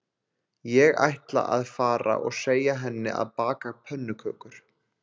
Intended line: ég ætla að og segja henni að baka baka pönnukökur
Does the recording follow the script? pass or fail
fail